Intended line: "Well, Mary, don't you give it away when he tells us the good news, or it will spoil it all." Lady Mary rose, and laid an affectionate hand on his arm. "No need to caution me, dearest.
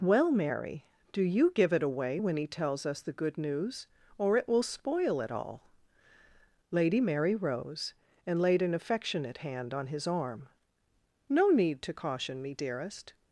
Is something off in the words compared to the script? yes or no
yes